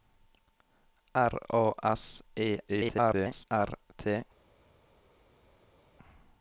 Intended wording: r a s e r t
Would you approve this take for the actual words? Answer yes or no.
no